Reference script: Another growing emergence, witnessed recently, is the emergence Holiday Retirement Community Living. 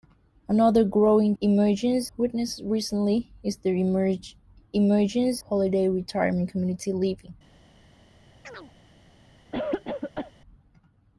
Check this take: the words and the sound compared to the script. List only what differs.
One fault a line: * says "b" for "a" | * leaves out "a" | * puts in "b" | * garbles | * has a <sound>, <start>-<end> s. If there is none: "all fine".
* has a chirp, 8.4-8.7 s
* has a cough, 9.5-10.3 s